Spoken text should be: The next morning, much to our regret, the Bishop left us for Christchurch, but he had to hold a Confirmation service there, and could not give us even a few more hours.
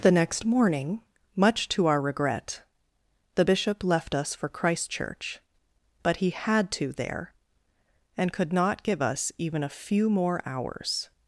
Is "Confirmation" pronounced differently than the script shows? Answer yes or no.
yes